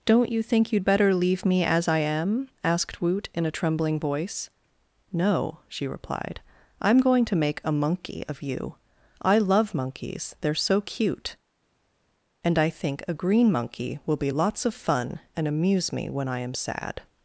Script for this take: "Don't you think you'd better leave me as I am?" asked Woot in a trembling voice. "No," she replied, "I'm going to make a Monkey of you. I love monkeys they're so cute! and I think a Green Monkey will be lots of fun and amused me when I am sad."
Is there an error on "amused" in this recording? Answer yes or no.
yes